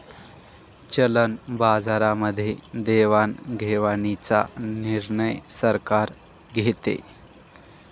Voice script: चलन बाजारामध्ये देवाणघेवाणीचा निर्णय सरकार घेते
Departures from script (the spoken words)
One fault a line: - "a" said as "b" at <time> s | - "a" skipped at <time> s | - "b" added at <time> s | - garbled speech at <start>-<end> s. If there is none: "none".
none